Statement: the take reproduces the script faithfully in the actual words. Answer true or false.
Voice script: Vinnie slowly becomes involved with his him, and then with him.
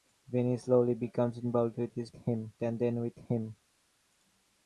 true